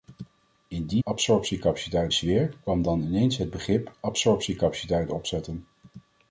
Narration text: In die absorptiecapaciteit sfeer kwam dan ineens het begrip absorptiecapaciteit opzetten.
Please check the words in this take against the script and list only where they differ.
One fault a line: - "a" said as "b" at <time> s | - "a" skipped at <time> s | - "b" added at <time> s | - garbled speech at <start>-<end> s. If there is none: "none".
none